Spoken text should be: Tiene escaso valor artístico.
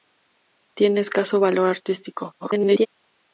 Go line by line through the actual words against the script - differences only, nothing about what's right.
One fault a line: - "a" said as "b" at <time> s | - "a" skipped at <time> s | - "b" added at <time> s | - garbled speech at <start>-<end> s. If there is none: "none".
- garbled speech at 2.4-2.9 s